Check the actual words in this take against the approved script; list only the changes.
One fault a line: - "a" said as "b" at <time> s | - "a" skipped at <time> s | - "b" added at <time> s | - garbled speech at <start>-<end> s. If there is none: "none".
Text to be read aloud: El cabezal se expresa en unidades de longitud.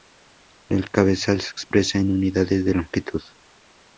none